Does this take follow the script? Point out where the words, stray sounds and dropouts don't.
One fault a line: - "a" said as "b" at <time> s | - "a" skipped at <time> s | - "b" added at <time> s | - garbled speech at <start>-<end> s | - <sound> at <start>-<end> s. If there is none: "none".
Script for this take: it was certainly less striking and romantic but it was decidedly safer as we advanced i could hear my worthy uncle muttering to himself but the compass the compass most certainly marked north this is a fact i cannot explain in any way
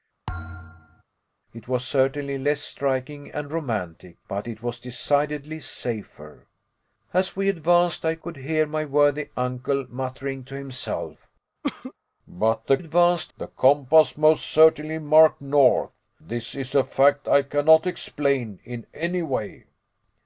- thud at 0.3-1.0 s
- cough at 11.6-11.9 s
- "compass" said as "advanced" at 12.8 s